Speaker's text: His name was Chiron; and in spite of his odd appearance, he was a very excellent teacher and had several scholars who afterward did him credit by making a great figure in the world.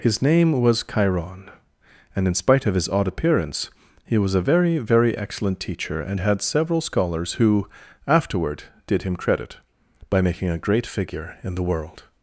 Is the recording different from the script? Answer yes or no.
yes